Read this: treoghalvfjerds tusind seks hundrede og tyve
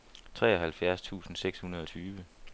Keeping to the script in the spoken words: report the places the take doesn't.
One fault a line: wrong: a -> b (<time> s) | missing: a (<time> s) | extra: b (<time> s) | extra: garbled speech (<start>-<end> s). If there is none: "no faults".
no faults